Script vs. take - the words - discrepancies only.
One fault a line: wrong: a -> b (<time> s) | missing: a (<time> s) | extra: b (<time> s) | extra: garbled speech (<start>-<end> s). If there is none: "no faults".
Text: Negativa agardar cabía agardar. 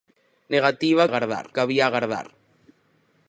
no faults